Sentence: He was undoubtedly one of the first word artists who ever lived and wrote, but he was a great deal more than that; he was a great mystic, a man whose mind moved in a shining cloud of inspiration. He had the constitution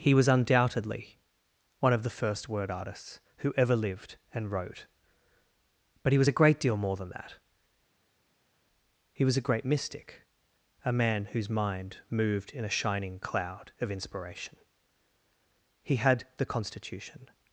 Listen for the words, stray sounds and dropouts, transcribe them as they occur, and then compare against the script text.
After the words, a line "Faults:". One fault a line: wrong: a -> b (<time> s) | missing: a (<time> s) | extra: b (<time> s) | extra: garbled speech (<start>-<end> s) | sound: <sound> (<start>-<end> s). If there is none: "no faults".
He was undoubtedly one of the first word artists who ever lived and wrote, but he was a great deal more than that; he was a great mystic, a man whose mind moved in a shining cloud of inspiration. He had the constitution
Faults:
no faults